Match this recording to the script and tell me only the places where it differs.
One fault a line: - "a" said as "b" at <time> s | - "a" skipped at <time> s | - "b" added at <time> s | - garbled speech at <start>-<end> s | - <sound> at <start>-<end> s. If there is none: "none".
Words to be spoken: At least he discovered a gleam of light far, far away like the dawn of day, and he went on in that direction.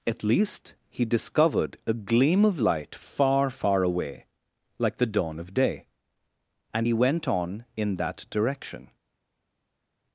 none